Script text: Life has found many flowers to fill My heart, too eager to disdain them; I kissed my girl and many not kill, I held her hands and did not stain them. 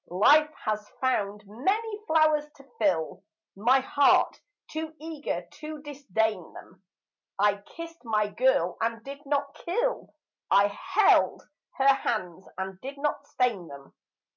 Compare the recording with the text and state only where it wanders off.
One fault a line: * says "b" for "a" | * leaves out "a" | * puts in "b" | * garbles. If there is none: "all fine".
* says "did" for "many"